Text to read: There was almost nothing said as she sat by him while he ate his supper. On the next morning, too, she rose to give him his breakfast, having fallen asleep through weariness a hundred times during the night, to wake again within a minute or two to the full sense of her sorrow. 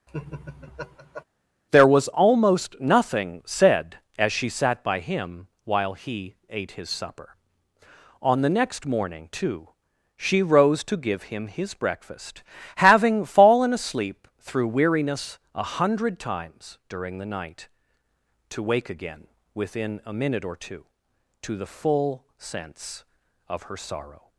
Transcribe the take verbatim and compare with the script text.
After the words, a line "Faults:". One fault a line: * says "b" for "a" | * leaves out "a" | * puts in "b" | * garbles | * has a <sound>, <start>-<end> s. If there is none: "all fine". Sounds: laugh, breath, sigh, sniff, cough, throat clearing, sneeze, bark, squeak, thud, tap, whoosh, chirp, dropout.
There was almost nothing said as she sat by him while he ate his supper. On the next morning, too, she rose to give him his breakfast, having fallen asleep through weariness a hundred times during the night, to wake again within a minute or two to the full sense of her sorrow.
Faults:
* has a laugh, 0.1-1.2 s